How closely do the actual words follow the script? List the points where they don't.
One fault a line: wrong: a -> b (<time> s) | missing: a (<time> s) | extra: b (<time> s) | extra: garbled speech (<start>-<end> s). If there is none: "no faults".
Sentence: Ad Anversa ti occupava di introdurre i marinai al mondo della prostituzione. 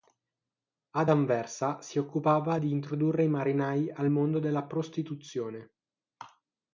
wrong: ti -> si (1.8 s)